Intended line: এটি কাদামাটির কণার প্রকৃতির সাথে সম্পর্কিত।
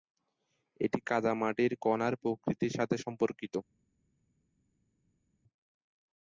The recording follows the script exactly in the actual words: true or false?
true